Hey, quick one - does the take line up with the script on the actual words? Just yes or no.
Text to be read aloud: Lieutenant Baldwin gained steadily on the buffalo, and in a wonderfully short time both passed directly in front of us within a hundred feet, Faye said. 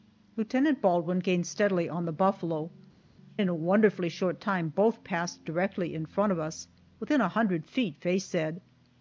no